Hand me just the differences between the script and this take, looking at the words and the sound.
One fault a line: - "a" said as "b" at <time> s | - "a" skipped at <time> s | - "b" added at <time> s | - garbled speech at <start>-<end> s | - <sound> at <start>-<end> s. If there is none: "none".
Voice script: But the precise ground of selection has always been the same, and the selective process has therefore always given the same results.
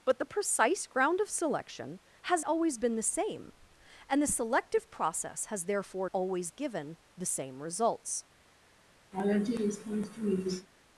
- laugh at 9.1-10.7 s